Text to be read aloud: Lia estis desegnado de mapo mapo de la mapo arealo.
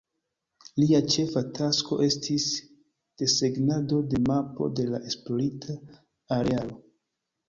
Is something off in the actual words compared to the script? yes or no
yes